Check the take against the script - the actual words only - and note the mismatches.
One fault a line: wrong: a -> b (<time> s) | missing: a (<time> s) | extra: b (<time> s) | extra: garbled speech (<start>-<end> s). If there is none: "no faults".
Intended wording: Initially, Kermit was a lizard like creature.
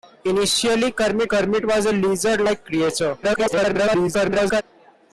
extra: Kermit (1.3 s)
extra: garbled speech (3.2-4.6 s)